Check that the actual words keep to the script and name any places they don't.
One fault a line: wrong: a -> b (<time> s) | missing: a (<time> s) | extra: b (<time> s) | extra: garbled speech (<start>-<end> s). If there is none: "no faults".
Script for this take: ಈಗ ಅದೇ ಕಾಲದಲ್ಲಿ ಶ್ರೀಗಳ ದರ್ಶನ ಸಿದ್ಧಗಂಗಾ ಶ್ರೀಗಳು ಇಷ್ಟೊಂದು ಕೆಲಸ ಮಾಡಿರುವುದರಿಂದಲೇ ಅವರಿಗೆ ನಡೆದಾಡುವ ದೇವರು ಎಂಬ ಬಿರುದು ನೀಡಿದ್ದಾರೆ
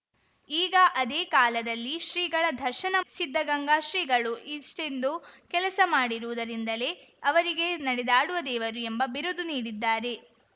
no faults